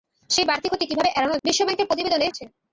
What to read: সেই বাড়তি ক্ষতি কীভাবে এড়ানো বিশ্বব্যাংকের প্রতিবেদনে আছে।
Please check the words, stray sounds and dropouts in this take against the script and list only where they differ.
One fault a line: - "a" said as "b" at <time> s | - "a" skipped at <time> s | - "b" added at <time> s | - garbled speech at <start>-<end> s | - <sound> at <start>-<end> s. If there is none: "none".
none